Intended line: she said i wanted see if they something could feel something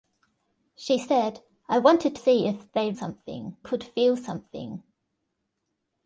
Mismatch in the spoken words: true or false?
false